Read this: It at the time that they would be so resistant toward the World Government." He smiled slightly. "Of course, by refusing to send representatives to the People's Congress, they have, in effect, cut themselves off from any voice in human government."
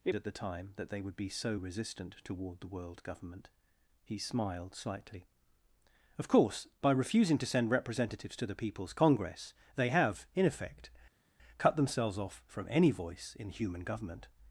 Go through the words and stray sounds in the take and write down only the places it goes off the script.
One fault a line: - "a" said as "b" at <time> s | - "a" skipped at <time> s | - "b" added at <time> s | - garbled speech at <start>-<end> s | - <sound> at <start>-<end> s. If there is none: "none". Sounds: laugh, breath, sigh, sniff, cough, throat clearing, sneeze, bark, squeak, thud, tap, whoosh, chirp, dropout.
none